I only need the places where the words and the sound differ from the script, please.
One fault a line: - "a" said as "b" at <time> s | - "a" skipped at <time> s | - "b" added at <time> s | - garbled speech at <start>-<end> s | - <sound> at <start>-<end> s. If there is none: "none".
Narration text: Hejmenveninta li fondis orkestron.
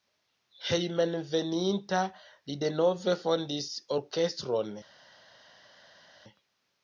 - "denove" added at 2.7 s